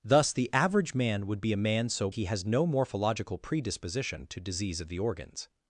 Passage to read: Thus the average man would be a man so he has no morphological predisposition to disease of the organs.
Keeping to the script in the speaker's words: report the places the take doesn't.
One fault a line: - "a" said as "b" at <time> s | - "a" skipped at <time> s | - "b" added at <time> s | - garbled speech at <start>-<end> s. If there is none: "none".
none